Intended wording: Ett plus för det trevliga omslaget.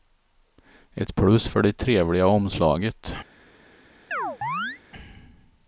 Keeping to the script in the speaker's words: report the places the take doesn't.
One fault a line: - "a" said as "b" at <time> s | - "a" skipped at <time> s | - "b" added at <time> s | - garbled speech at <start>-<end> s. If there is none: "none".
none